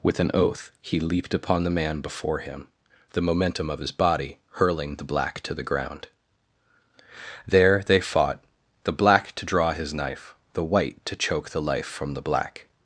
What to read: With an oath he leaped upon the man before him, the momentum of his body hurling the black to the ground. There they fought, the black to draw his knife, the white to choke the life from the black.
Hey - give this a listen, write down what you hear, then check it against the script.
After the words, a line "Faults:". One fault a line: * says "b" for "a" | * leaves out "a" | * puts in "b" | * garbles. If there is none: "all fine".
With an oath he leaped upon the man before him, the momentum of his body hurling the black to the ground. There they fought, the black to draw his knife, the white to choke the life from the black.
Faults:
all fine